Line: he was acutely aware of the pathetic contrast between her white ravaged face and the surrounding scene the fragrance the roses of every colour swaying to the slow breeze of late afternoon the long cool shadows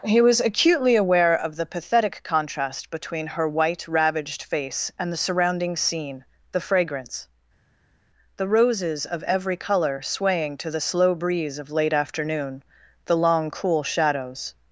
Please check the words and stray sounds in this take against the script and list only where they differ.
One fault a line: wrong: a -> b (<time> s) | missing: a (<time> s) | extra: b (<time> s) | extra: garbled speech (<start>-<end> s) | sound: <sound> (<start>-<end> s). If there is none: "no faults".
no faults